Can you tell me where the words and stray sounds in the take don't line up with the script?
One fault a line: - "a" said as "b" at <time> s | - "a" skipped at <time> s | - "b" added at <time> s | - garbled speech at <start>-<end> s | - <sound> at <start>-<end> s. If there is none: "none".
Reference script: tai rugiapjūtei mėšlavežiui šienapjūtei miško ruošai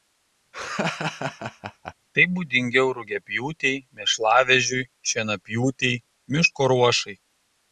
- laugh at 0.5-1.9 s
- "būdingiau" added at 2.3 s